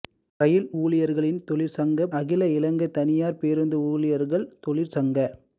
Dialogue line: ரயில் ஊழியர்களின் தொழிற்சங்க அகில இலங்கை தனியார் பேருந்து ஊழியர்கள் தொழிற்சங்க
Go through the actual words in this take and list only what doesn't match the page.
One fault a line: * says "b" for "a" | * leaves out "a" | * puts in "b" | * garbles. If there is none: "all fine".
all fine